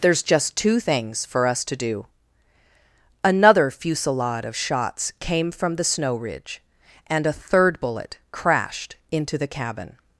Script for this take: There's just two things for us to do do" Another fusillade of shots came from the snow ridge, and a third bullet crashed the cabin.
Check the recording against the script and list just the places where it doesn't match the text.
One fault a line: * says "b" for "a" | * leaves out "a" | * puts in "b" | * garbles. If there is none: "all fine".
* leaves out "do"
* puts in "into"